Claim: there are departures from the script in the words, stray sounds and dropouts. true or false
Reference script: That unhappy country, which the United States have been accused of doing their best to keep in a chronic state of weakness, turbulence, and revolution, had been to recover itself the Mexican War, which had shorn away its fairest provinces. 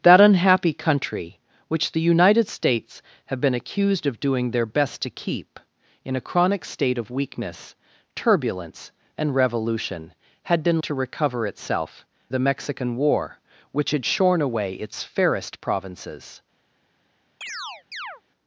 true